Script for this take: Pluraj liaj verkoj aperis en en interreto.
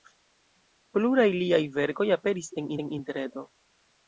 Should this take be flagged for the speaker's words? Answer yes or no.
no